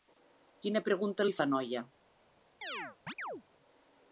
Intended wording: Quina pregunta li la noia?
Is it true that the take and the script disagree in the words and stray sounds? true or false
true